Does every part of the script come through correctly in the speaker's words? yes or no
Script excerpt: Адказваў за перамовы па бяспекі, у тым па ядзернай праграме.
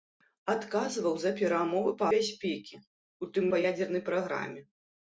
yes